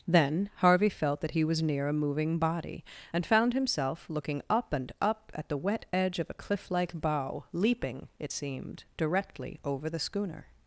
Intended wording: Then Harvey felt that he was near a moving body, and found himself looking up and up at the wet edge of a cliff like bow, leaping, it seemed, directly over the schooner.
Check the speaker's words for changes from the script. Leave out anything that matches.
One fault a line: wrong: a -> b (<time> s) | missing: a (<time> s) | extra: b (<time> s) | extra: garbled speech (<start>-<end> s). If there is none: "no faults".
no faults